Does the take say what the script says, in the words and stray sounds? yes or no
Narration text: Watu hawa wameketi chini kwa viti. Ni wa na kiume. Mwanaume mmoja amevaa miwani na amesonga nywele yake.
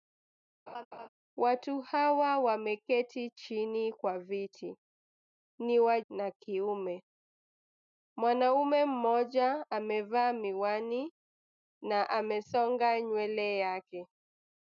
no